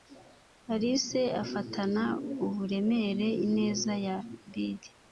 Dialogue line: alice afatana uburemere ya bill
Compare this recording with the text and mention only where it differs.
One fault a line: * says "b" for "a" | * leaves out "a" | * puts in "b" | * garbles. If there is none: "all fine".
* puts in "ineza"